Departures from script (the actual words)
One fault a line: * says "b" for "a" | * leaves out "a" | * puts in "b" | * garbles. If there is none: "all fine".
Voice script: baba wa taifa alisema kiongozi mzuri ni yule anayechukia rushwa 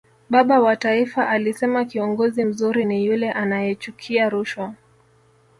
all fine